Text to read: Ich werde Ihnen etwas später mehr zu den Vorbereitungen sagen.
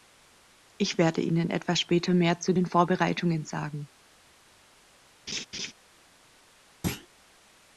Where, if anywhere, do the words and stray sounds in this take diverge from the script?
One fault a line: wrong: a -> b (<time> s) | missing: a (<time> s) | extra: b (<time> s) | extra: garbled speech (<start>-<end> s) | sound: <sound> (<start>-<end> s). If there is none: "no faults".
sound: laugh (5.3-5.7 s)
sound: thud (6.8-7.1 s)